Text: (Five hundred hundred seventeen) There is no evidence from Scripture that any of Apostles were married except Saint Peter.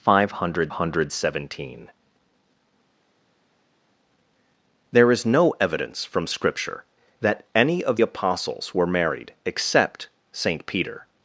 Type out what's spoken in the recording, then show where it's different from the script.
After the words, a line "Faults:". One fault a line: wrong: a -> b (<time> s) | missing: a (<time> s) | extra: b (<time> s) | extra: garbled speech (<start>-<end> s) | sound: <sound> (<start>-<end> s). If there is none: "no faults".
(Five hundred hundred seventeen) There is no evidence from Scripture that any of Apostles were married except Saint Peter.
Faults:
no faults